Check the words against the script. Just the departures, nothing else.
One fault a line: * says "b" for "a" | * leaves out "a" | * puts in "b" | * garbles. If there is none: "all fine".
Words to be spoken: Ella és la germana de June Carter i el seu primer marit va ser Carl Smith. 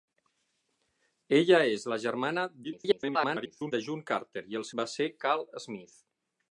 * garbles
* leaves out "seu primer marit"